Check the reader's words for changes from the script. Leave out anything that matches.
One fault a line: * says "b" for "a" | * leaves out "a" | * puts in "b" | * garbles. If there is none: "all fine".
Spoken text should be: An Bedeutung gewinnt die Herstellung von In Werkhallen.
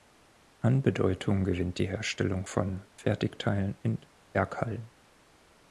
* puts in "Fertigteilen"